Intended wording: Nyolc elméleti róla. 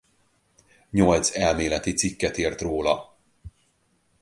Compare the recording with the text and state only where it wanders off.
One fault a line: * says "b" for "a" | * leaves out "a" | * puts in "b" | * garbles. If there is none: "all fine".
* puts in "cikket írt"